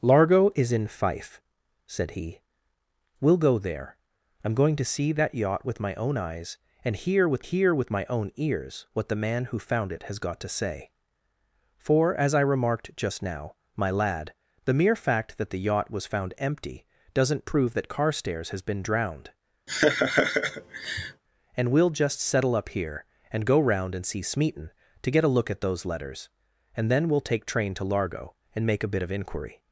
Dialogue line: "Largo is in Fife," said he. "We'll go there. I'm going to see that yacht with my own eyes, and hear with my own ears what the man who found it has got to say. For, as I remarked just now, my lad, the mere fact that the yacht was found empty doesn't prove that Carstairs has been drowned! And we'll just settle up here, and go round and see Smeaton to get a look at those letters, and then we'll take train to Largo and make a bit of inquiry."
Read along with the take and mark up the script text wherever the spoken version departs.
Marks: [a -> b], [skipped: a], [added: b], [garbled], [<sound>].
"Largo is in Fife," said he. "We'll go there. I'm going to see that yacht with my own eyes, and hear with [added: hear with] my own ears what the man who found it has got to say. For, as I remarked just now, my lad, the mere fact that the yacht was found empty doesn't prove that Carstairs has been drowned! [laugh] And we'll just settle up here, and go round and see Smeaton to get a look at those letters, and then we'll take train to Largo and make a bit of inquiry."